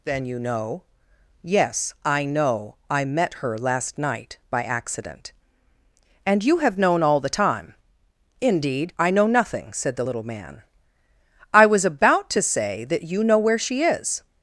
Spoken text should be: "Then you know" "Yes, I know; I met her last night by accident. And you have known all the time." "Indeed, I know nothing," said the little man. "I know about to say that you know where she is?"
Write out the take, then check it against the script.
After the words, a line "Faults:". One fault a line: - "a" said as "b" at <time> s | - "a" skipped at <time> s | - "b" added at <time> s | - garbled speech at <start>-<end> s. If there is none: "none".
"Then you know" "Yes, I know; I met her last night by accident. And you have known all the time." "Indeed, I know nothing," said the little man. "I was about to say that you know where she is?"
Faults:
- "know" said as "was" at 11.7 s